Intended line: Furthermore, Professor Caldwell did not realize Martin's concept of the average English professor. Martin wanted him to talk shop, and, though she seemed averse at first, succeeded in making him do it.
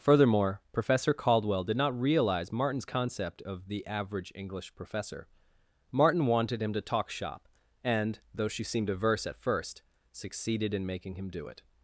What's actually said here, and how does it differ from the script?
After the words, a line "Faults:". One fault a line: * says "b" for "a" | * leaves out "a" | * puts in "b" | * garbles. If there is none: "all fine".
Furthermore, Professor Caldwell did not realize Martin's concept of the average English professor. Martin wanted him to talk shop, and, though she seemed averse at first, succeeded in making him do it.
Faults:
all fine